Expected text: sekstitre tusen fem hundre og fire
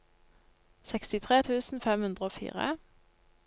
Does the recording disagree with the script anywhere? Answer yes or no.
no